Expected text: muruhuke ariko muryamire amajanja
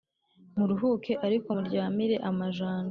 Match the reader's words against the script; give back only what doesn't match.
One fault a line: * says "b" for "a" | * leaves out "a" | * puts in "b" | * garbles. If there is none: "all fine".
all fine